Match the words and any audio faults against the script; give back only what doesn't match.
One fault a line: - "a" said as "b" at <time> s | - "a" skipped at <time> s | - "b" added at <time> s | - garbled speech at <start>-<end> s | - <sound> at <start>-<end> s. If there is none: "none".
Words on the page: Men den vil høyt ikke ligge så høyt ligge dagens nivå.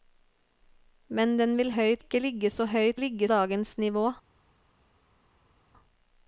none